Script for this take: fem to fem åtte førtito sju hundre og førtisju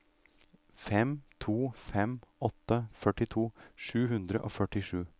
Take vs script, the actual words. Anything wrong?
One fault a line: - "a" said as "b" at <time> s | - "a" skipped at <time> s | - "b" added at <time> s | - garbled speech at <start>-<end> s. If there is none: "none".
none